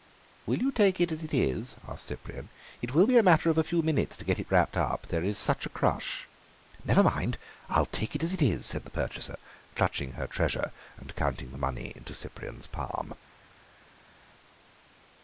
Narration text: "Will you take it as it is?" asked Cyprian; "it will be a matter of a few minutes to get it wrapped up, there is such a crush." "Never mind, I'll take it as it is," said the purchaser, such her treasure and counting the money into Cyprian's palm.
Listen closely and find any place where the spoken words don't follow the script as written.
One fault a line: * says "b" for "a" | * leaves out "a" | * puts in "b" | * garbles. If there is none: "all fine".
* says "clutching" for "such"